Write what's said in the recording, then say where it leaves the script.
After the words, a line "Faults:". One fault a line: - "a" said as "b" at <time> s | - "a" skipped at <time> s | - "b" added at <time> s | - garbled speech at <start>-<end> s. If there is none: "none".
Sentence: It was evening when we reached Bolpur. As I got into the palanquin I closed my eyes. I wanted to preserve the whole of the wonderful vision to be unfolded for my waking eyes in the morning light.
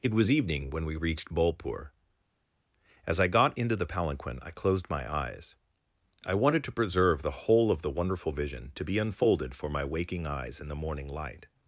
It was evening when we reached Bolpur. As I got into the palanquin I closed my eyes. I wanted to preserve the whole of the wonderful vision to be unfolded for my waking eyes in the morning light.
Faults:
none